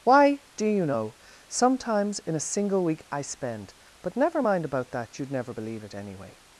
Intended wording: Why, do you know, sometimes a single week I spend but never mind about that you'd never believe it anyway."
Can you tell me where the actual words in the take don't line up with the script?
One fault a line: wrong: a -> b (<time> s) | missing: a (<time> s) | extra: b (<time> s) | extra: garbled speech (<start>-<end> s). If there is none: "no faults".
extra: in (2.2 s)